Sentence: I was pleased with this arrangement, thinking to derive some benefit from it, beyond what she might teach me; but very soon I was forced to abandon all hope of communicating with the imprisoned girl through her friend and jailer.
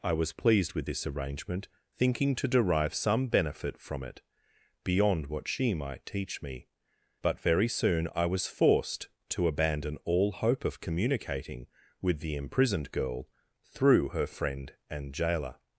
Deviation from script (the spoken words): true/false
false